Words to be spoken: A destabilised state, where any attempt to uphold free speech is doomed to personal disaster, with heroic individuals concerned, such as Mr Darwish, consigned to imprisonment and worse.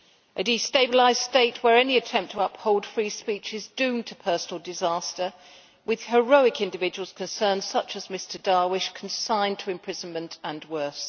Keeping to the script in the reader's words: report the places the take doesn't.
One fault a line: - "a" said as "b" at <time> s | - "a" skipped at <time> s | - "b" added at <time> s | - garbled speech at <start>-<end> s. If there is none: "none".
none